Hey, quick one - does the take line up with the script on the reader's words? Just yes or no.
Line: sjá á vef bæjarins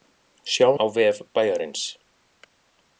yes